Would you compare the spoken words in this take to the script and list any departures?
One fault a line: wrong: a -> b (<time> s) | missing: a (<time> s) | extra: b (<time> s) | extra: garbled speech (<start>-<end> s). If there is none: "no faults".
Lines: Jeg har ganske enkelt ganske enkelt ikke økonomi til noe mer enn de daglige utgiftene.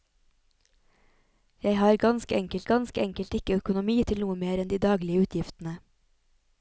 no faults